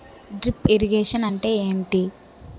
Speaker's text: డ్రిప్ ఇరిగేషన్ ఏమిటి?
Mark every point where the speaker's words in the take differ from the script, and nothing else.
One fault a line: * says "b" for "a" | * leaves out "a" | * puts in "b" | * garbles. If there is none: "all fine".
* puts in "అంటే"